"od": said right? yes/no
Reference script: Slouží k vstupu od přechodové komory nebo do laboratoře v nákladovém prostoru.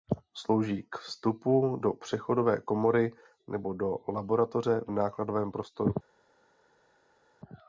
no